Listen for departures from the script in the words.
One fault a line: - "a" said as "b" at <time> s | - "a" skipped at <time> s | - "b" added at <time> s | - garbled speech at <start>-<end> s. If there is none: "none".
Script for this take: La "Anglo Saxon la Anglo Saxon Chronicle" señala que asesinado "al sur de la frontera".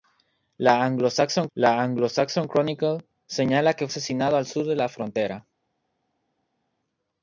none